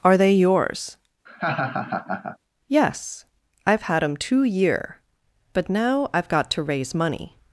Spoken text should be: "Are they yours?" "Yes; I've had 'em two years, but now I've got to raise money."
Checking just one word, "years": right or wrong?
wrong